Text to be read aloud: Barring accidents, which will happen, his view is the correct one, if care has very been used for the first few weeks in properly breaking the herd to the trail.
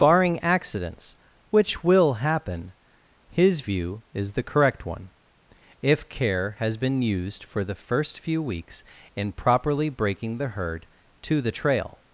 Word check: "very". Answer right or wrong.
wrong